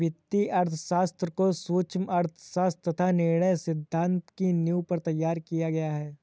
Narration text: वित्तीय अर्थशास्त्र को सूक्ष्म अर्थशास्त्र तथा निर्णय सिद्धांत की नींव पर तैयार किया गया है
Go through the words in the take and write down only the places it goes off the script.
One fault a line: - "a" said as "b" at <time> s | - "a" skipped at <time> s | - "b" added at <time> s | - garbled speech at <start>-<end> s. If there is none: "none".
none